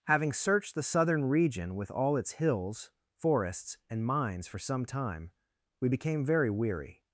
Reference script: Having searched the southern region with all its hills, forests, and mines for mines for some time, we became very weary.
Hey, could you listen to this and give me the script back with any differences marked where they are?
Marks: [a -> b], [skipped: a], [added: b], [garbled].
Having searched the southern region with all its hills, forests, and mines for [skipped: mines for] some time, we became very weary.